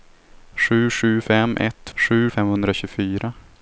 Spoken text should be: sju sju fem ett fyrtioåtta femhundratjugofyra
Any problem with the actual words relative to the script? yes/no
yes